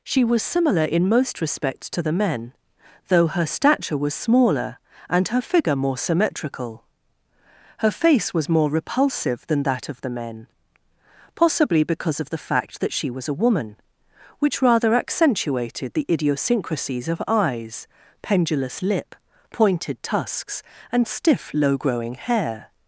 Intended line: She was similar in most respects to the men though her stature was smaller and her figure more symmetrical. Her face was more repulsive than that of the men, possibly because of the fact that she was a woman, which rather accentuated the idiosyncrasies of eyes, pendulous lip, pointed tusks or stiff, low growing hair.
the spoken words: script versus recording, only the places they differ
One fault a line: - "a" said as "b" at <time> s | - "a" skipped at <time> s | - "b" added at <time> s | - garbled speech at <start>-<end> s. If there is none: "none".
- "or" said as "and" at 20.9 s